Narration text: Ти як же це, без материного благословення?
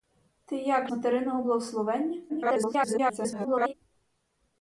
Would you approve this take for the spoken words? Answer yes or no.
no